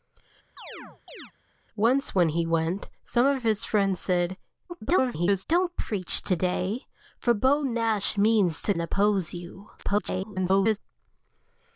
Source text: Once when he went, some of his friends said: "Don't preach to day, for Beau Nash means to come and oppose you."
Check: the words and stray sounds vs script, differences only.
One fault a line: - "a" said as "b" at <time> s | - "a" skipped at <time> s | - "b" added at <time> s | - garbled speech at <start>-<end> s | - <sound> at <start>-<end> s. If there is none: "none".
- chirp at 0.6-1.3 s
- garbled speech at 4.7-5.4 s
- "come" skipped at 8.7 s
- garbled speech at 9.8-10.8 s